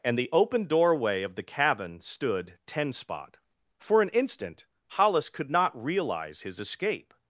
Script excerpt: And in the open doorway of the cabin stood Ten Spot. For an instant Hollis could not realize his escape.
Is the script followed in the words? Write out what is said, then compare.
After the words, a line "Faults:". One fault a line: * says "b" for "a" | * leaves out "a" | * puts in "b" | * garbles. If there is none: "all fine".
And the open doorway of the cabin stood Ten Spot. For an instant Hollis could not realize his escape.
Faults:
* leaves out "in"